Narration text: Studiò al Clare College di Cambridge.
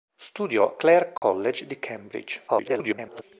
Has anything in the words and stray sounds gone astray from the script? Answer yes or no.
yes